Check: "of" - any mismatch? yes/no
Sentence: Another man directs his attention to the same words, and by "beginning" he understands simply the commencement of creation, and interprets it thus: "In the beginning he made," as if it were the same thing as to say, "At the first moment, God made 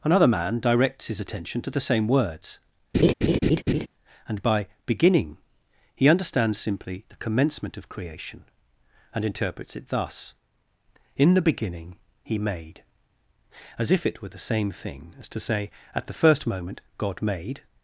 no